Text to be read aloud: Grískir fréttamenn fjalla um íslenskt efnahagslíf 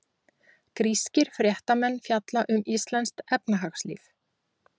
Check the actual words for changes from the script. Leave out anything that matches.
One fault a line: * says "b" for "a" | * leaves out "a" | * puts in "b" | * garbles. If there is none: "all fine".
all fine